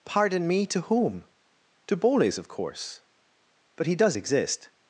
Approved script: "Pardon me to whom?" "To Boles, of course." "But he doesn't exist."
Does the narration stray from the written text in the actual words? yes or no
yes